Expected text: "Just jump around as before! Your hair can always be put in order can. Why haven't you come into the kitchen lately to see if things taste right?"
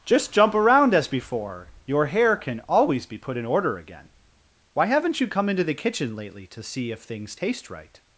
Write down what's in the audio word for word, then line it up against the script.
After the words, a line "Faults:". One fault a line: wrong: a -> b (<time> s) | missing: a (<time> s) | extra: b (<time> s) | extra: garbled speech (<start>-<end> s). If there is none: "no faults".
"Just jump around as before! Your hair can always be put in order again. Why haven't you come into the kitchen lately to see if things taste right?"
Faults:
wrong: can -> again (3.8 s)